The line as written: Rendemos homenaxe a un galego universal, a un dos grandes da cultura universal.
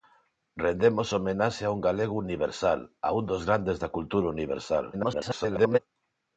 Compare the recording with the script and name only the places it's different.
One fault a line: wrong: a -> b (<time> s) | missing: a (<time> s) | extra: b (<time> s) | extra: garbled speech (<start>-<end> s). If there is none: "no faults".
extra: garbled speech (4.9-5.8 s)